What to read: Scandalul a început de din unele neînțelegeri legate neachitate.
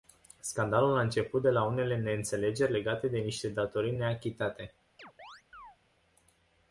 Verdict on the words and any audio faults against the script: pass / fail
fail